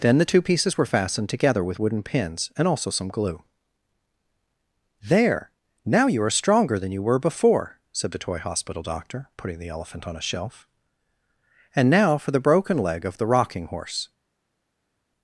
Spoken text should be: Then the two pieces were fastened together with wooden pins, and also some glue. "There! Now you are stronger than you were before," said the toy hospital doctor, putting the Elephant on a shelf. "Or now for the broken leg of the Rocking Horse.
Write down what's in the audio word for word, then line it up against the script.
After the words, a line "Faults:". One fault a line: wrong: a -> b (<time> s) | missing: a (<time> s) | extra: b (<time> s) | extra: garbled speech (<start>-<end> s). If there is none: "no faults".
Then the two pieces were fastened together with wooden pins, and also some glue. "There! Now you are stronger than you were before," said the toy hospital doctor, putting the Elephant on a shelf. "And now for the broken leg of the Rocking Horse.
Faults:
wrong: Or -> And (11.7 s)